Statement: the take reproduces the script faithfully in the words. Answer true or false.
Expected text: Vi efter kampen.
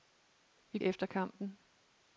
true